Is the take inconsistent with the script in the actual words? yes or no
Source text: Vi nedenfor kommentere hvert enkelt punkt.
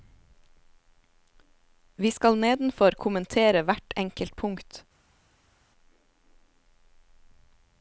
yes